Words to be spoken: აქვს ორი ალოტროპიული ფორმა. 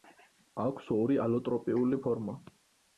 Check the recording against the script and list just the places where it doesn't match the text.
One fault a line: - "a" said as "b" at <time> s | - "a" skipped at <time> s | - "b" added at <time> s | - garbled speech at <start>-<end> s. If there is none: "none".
none